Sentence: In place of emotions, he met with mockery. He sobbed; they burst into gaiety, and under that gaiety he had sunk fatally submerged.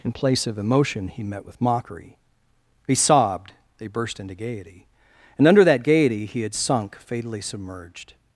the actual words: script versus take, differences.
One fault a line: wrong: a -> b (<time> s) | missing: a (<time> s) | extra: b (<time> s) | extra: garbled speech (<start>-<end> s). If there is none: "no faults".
wrong: emotions -> emotion (0.6 s)